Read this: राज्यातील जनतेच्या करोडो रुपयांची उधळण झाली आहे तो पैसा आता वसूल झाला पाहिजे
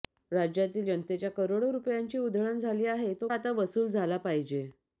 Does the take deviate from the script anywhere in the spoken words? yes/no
yes